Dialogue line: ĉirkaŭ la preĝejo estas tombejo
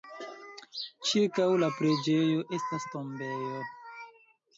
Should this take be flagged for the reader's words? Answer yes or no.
no